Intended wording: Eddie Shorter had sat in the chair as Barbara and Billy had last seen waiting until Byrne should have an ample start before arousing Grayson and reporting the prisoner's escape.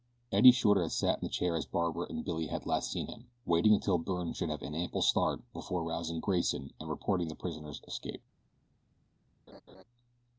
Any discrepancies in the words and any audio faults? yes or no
yes